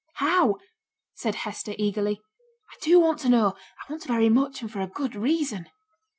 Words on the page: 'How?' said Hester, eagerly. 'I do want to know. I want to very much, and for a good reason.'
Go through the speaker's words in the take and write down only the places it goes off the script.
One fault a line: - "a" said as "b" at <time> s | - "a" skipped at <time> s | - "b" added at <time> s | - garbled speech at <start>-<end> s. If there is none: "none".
none